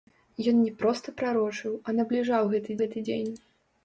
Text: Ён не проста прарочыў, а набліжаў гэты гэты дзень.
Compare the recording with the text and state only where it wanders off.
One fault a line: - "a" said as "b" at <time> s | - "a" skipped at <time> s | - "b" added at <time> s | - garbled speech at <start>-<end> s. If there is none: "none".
none